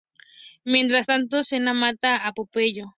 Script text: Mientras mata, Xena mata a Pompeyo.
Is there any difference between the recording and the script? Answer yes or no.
yes